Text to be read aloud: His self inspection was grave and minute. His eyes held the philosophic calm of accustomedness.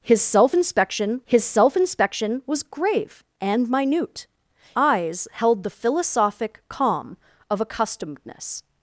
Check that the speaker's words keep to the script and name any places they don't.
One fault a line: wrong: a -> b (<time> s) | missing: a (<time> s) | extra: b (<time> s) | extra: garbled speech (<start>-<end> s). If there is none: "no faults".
extra: his self inspection (1.2 s)
missing: His (4.3 s)